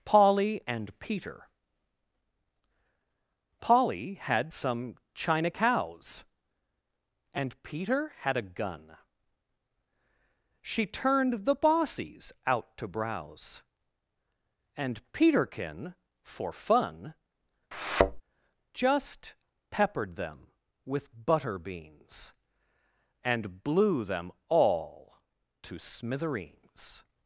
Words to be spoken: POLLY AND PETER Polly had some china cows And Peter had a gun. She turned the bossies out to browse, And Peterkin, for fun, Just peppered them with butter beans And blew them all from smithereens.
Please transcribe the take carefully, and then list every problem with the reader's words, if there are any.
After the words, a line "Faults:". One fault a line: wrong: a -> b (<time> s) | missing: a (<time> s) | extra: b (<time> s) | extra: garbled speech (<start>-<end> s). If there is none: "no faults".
POLLY AND PETER Polly had some china cows And Peter had a gun. She turned the bossies out to browse, And Peterkin, for fun, Just peppered them with butter beans And blew them all to smithereens.
Faults:
wrong: from -> to (25.6 s)